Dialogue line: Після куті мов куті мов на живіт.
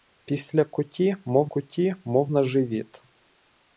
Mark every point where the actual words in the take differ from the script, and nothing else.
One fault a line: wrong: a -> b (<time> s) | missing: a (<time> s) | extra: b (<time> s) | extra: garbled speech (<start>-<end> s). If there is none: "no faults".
no faults